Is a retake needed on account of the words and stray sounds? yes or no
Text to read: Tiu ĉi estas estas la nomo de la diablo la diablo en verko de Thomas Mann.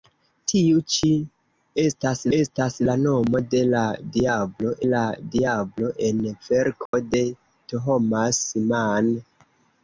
yes